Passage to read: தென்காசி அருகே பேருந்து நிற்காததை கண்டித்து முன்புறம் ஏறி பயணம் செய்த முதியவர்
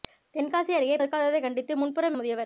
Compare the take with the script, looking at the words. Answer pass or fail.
fail